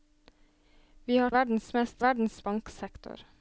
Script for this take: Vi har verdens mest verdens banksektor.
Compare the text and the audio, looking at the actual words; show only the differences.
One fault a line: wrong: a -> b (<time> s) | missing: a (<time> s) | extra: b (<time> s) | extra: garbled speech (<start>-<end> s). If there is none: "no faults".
no faults